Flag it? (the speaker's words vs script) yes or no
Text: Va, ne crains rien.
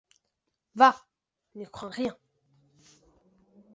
no